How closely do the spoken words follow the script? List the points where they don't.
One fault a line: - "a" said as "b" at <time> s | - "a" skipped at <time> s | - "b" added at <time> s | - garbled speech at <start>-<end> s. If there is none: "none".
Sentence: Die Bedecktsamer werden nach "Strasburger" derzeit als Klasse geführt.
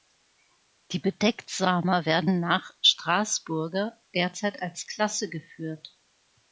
none